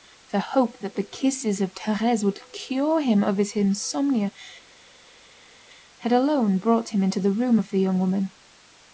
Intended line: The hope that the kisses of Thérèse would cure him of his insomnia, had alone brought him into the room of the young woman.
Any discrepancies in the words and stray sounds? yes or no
no